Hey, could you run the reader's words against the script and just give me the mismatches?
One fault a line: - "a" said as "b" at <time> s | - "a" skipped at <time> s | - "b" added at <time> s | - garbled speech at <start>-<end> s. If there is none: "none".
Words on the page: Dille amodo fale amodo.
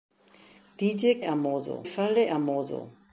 none